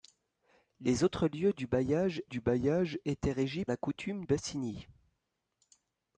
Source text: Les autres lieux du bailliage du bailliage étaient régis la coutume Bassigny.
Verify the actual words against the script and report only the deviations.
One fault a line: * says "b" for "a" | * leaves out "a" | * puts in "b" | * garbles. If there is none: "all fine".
all fine